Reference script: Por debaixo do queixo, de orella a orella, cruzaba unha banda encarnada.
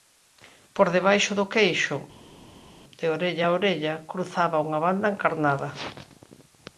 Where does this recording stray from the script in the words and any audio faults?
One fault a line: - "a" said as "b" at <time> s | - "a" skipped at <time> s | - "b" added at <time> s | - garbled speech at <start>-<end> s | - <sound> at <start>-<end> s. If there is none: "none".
none